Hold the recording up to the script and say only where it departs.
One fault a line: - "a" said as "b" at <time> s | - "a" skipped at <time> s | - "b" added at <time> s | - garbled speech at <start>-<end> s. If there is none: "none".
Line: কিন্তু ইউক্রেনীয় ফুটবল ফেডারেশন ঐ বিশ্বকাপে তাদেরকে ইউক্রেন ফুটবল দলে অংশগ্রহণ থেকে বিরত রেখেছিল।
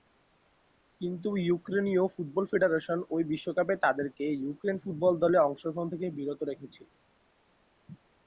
none